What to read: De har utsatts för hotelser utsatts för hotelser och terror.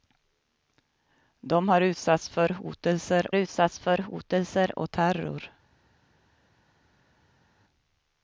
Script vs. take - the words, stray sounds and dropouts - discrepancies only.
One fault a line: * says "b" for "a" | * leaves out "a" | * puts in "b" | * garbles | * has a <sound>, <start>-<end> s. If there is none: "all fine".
all fine